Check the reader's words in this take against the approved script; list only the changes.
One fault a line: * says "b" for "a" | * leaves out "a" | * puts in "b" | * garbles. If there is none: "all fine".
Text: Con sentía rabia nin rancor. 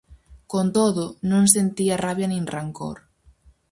* puts in "todo non"